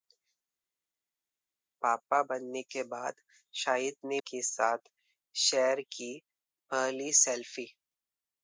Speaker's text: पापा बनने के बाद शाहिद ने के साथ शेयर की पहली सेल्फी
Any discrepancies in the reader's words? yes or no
no